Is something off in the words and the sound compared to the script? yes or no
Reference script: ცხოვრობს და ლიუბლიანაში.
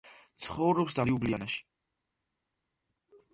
no